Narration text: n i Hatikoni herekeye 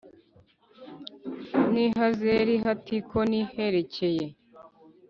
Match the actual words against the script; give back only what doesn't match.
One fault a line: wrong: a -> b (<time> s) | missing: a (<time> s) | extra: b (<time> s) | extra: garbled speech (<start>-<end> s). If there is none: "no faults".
extra: Hazeri (2.0 s)